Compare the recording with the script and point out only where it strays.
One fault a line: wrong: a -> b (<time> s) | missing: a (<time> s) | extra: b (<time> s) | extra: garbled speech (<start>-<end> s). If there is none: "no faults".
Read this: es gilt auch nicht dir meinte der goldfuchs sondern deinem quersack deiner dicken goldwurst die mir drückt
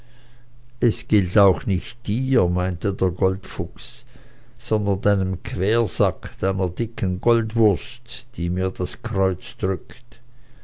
extra: das kreuz (8.7 s)